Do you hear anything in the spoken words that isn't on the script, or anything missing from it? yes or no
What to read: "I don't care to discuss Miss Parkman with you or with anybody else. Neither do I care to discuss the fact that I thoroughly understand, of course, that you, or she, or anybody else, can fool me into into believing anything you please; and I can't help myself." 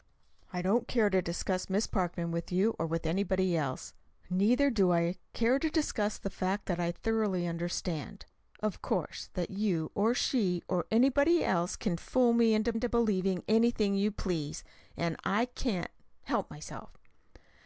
no